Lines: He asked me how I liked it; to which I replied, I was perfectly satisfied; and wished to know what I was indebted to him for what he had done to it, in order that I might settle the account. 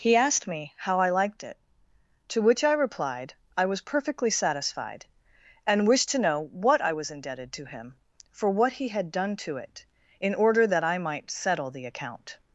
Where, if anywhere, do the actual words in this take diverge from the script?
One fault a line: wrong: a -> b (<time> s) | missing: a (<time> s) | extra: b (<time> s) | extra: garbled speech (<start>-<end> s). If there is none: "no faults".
no faults